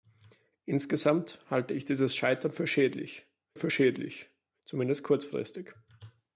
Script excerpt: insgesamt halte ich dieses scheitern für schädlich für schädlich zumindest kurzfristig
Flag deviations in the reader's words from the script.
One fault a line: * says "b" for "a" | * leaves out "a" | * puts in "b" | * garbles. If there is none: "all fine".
all fine